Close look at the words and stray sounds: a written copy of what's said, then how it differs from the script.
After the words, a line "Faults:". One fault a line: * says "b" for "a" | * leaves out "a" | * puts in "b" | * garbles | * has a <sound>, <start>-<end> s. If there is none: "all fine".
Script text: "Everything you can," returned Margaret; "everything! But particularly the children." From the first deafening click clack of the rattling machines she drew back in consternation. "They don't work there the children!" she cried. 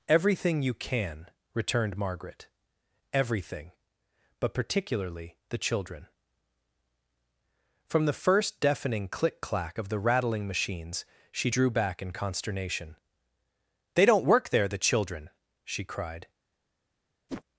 "Everything you can," returned Margaret; "everything! But particularly the children." From the first deafening click clack of the rattling machines she drew back in consternation. "They don't work there the children!" she cried.
Faults:
* has a whoosh, 17.3-17.4 s